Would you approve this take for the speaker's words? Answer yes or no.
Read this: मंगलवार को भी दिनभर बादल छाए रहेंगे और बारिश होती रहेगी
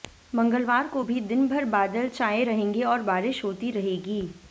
yes